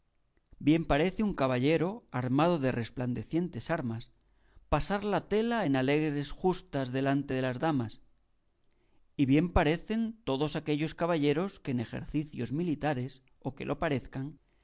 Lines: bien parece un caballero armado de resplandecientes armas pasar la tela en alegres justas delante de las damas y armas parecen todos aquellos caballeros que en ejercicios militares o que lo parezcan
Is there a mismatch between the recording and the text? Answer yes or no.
yes